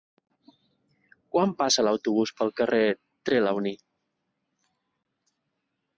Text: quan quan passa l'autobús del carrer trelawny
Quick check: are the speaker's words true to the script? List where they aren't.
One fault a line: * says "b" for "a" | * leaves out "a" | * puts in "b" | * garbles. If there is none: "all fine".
* leaves out "quan"
* says "pel" for "del"